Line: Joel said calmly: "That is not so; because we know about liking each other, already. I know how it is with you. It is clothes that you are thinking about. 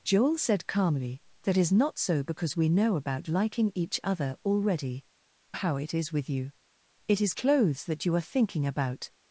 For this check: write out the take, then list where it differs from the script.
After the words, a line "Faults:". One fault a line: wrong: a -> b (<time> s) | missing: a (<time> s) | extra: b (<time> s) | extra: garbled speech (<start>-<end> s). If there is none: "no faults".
Joel said calmly: "That is not so; because we know about liking each other, already. how it is with you. It is clothes that you are thinking about.
Faults:
missing: I know (5.0 s)